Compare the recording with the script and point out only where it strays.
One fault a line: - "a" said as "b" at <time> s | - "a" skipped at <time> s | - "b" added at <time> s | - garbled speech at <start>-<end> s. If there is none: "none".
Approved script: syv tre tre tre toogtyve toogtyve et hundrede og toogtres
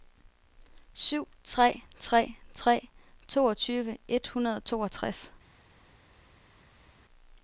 - "toogtyve" skipped at 4.0 s